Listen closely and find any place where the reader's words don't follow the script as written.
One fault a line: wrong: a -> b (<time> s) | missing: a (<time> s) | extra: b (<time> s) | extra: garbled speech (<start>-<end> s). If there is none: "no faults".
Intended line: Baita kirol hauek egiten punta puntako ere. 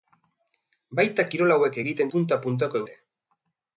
no faults